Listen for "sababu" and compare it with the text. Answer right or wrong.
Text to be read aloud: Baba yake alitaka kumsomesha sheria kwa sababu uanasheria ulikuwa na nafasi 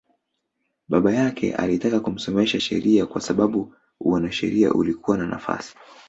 right